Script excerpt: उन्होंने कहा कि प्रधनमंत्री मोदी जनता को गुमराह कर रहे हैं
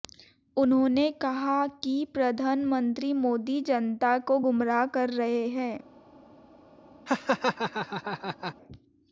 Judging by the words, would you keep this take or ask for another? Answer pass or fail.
pass